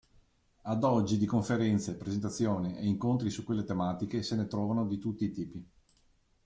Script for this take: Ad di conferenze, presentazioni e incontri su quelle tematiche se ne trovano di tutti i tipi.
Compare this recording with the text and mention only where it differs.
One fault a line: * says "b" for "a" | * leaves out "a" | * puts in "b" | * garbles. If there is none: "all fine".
* puts in "oggi"